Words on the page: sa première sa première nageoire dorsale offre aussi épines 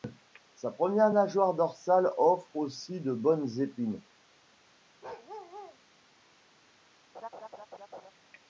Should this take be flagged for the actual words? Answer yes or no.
yes